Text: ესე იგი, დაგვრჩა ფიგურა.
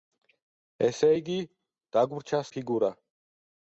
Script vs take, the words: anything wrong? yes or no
no